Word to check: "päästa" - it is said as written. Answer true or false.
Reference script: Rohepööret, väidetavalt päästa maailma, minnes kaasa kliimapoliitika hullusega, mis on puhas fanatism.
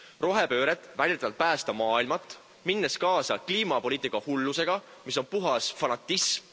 true